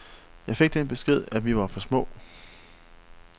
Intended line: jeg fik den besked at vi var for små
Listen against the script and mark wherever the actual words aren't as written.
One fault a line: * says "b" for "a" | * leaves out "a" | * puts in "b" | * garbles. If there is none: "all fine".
all fine